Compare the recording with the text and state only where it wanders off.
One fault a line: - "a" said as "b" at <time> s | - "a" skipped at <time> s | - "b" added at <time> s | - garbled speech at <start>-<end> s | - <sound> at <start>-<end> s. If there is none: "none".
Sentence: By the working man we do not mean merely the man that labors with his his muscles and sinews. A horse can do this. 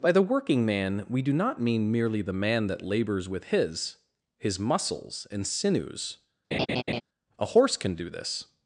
- laugh at 6.5-7.0 s